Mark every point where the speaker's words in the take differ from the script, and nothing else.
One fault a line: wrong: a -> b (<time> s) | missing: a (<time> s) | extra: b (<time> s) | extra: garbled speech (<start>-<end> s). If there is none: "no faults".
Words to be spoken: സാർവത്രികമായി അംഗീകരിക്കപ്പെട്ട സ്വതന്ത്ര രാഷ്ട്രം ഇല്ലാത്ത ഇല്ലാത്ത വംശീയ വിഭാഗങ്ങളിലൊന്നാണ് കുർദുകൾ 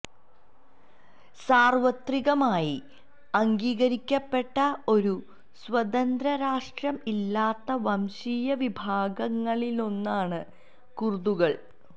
extra: ഒരു (4.9 s)
missing: ഇല്ലാത്ത (7.8 s)